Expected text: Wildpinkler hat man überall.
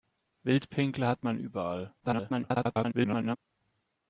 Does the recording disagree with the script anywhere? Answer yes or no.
yes